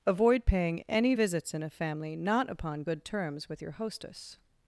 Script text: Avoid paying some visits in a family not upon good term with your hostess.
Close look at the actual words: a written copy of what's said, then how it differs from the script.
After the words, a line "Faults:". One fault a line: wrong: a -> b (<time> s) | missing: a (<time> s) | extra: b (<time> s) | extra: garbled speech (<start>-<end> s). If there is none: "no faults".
Avoid paying any visits in a family not upon good terms with your hostess.
Faults:
wrong: some -> any (0.9 s)
wrong: term -> terms (3.0 s)